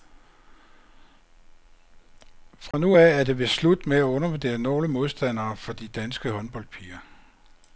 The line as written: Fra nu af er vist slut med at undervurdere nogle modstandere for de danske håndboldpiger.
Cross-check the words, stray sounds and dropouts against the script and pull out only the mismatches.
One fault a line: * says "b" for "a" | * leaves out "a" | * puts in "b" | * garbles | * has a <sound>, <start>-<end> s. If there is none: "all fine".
* has a dropout, 2.7-2.7 s
* puts in "det"